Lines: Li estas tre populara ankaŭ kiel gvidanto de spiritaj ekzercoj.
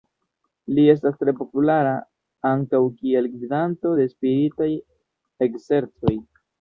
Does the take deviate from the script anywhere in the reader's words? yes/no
no